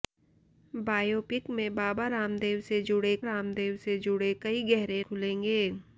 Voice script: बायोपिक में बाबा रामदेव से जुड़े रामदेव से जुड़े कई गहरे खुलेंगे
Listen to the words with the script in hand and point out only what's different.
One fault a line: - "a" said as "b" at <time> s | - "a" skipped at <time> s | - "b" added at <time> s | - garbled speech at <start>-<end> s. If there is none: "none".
none